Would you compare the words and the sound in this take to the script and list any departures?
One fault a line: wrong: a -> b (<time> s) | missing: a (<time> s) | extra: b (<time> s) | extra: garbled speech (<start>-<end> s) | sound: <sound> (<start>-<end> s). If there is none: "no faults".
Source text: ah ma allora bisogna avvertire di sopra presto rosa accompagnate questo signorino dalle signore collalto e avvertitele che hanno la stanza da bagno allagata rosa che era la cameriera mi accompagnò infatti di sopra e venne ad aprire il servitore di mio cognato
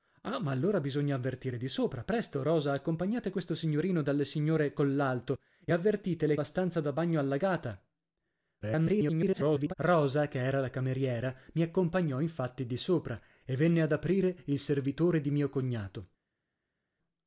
missing: che hanno (6.4 s)
extra: garbled speech (8.6-9.7 s)